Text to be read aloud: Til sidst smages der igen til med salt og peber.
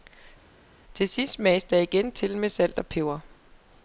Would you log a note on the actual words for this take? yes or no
no